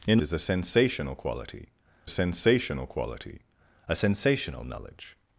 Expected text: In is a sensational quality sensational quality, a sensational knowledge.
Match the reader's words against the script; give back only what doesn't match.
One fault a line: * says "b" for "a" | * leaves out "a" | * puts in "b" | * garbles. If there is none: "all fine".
all fine